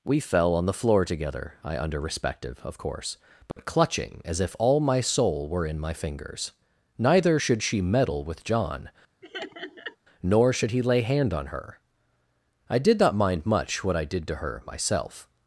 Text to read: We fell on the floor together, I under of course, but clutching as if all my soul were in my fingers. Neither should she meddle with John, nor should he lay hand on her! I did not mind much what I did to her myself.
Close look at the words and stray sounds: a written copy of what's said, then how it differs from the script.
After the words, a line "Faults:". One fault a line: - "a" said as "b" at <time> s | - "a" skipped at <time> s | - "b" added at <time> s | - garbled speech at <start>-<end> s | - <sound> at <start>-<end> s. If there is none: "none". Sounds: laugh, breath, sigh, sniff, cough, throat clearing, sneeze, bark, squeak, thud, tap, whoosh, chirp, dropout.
We fell on the floor together, I under respective of course, but clutching as if all my soul were in my fingers. Neither should she meddle with John, nor should he lay hand on her! I did not mind much what I did to her myself.
Faults:
- "respective" added at 2.0 s
- dropout at 3.5-3.6 s
- laugh at 9.2-10.0 s